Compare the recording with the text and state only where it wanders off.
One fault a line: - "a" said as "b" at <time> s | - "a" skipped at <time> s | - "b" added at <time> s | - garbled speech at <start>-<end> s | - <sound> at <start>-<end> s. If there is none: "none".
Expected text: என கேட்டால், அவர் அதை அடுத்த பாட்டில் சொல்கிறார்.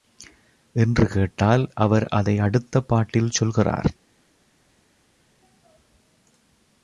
- "என" said as "என்று" at 0.8 s